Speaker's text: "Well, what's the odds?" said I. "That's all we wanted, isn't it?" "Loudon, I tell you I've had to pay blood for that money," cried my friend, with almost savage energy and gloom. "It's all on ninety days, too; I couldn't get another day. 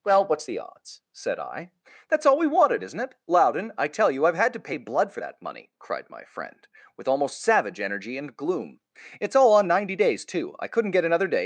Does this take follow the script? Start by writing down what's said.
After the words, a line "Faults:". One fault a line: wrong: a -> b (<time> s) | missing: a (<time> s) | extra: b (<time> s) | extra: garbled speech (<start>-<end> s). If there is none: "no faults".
"Well, what's the odds?" said I. "That's all we wanted, isn't it?" "Loudon, I tell you I've had to pay blood for that money," cried my friend, with almost savage energy and gloom. "It's all on ninety days, too; I couldn't get another day.
Faults:
no faults